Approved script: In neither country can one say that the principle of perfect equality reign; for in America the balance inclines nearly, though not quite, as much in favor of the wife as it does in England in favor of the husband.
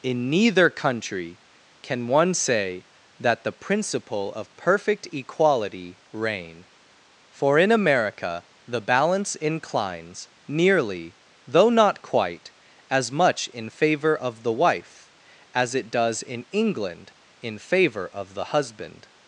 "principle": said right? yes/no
yes